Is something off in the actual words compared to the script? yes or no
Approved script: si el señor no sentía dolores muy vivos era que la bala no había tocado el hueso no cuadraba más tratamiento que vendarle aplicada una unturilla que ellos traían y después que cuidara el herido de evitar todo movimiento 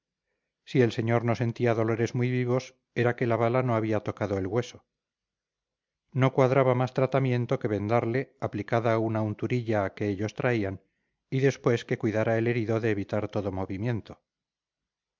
no